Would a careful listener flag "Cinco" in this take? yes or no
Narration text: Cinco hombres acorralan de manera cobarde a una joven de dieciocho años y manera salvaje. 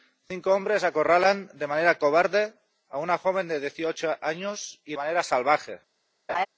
no